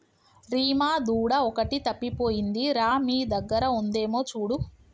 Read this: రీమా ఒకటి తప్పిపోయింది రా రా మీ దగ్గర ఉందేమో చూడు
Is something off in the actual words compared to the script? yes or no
yes